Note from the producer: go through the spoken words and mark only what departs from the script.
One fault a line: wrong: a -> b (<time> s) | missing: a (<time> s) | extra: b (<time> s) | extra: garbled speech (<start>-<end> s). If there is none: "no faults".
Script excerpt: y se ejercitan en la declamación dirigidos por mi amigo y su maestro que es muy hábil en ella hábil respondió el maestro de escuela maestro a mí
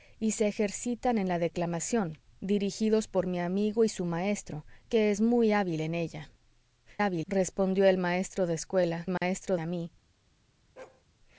no faults